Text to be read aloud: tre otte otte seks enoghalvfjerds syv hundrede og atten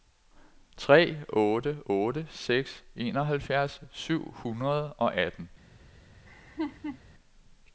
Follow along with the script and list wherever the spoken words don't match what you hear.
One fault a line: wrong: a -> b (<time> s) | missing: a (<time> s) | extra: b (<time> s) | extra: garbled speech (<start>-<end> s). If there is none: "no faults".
no faults